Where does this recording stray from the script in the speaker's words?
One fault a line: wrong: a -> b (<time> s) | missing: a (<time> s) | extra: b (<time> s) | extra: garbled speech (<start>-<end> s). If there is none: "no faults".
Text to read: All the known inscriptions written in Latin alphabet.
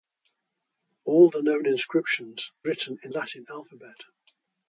no faults